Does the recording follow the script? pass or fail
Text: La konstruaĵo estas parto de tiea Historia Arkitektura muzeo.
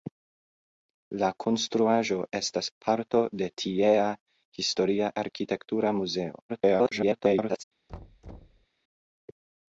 fail